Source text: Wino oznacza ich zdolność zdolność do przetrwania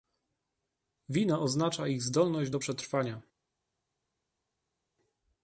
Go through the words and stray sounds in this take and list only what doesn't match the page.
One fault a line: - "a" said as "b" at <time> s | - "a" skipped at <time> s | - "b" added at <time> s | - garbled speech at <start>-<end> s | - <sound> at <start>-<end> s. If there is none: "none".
- "zdolność" skipped at 2.5 s